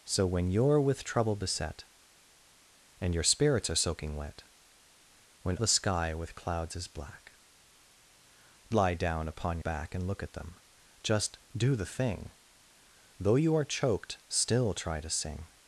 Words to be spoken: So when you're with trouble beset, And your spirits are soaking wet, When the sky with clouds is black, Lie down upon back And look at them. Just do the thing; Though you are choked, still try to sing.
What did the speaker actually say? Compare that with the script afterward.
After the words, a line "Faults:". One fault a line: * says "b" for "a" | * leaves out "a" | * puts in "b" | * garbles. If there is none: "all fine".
So when you're with trouble beset, And your spirits are soaking wet, When the sky with clouds is black, Lie down upon back And look at them. Just do the thing; Though you are choked, still try to sing.
Faults:
all fine